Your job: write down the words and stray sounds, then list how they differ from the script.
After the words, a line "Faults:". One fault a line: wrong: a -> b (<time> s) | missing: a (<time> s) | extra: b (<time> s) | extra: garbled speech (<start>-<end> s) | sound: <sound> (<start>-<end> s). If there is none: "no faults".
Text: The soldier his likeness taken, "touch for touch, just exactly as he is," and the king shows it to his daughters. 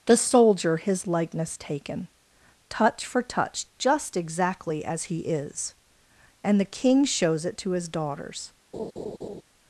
The soldier his likeness taken, "touch for touch, just exactly as he is," and the king shows it to his daughters.
Faults:
sound: laugh (8.7-9.4 s)